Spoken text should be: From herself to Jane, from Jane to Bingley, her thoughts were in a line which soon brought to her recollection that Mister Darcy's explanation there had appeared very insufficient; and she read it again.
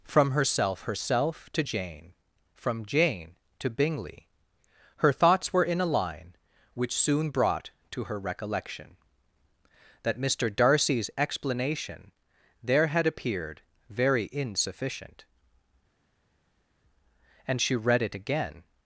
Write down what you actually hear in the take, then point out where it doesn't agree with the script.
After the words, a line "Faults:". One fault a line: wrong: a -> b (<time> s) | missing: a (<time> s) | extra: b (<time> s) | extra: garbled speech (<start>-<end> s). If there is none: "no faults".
From herself herself to Jane, from Jane to Bingley, her thoughts were in a line which soon brought to her recollection that Mister Darcy's explanation there had appeared very insufficient; and she read it again.
Faults:
extra: herself (0.8 s)